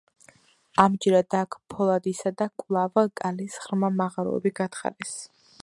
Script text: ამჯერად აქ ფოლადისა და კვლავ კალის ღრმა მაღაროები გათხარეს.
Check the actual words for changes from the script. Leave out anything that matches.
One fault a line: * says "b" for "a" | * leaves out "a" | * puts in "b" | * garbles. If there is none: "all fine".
all fine